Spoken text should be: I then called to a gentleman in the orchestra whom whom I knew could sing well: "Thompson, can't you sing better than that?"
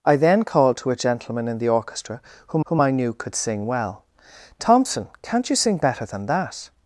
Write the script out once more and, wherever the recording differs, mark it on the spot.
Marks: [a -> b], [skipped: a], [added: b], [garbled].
I then called to a gentleman in the orchestra whom whom I knew could sing well: "Thompson, can't you sing better than that?"